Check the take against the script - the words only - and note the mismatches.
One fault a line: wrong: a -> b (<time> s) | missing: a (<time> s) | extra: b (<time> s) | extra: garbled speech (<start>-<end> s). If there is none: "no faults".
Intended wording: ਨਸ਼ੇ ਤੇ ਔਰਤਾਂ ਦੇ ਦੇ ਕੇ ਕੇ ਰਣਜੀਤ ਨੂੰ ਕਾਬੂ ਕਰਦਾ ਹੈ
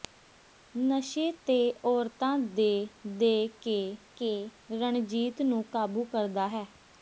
no faults